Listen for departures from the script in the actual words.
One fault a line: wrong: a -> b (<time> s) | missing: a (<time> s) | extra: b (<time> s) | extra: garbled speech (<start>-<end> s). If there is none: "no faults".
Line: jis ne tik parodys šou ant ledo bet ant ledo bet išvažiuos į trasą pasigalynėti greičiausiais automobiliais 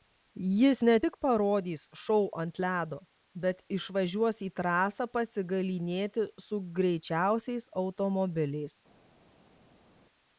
missing: ant ledo bet (3.6 s)
extra: su (6.5 s)